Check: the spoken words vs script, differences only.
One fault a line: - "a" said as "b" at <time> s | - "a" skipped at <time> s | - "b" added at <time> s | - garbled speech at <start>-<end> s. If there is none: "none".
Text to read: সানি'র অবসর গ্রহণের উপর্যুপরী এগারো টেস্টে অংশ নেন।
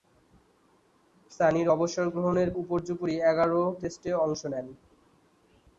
none